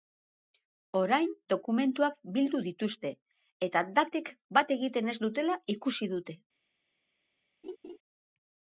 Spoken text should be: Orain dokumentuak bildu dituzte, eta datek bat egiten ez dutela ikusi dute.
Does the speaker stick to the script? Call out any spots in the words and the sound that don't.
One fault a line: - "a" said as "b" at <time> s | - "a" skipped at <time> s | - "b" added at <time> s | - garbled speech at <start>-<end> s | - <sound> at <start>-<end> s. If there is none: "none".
- laugh at 7.6-8.0 s